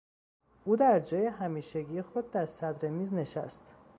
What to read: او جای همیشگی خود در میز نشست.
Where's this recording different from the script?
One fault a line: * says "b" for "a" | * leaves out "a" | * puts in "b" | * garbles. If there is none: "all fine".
* puts in "در"
* puts in "صدر"